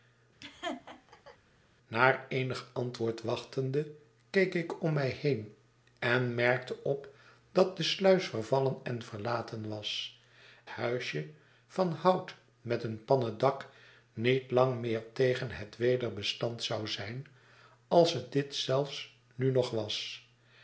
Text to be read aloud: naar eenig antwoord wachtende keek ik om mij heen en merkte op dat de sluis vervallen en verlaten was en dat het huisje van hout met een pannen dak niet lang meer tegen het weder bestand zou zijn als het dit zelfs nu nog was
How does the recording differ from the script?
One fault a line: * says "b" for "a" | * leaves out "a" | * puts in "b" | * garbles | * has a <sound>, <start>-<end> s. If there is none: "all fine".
* has a laugh, 0.4-1.4 s
* leaves out "en dat het"